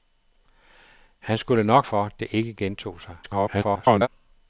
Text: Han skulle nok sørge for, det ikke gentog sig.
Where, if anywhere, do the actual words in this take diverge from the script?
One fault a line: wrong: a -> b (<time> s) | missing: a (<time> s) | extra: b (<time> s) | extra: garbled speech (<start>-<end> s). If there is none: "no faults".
missing: sørge (1.9 s)
extra: garbled speech (3.2-4.1 s)